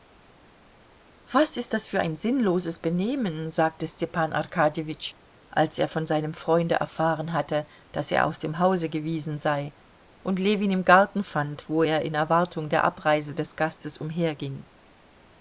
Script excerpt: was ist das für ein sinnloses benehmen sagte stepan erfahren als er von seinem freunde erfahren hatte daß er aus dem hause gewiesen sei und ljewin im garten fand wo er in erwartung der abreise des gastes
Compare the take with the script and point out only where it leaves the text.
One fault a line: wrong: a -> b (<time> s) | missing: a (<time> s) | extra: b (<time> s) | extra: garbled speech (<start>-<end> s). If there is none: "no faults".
wrong: erfahren -> arkadjewitsch (4.3 s)